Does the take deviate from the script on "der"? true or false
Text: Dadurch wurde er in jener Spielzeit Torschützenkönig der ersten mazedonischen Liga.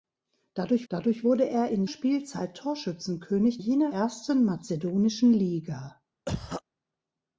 true